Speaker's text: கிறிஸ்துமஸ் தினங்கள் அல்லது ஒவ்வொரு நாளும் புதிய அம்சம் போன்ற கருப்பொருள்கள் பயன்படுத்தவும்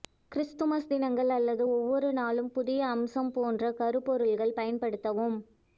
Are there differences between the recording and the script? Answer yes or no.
no